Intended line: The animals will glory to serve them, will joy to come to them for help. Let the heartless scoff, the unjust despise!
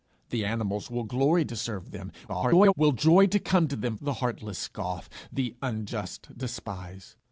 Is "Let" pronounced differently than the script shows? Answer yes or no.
yes